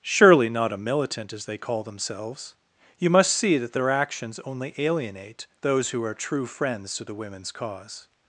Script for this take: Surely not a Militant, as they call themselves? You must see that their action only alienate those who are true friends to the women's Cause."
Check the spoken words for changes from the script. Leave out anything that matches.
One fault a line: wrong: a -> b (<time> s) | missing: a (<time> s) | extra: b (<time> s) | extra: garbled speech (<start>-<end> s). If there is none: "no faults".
wrong: action -> actions (3.9 s)